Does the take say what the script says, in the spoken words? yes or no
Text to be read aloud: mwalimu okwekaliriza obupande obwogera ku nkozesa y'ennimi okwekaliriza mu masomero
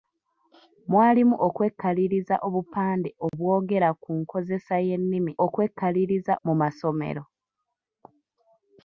yes